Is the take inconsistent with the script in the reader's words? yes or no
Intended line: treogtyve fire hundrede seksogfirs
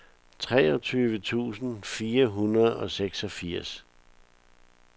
yes